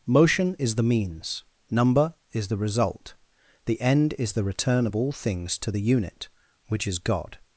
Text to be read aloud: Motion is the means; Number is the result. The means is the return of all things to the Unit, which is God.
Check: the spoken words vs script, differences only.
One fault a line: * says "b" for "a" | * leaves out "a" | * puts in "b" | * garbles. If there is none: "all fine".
* says "end" for "means"